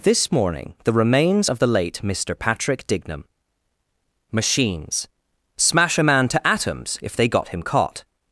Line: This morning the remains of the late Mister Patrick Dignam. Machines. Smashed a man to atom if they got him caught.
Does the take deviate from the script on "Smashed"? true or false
true